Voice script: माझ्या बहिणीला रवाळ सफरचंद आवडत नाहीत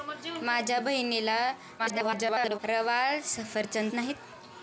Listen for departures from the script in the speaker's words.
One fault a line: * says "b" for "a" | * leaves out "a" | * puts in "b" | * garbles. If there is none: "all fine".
* garbles
* leaves out "आवडत"